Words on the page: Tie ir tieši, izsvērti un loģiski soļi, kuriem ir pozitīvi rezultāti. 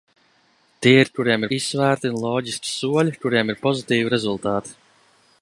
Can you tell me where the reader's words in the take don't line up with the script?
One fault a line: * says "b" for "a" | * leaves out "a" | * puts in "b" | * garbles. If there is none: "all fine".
* says "kuriem" for "tieši"